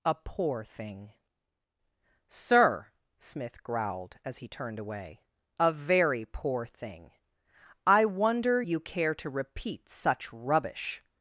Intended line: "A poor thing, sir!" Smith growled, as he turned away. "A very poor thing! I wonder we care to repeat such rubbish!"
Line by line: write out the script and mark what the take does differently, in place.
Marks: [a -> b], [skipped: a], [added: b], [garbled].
"A poor thing, sir!" Smith growled, as he turned away. "A very poor thing! I wonder [we -> you] care to repeat such rubbish!"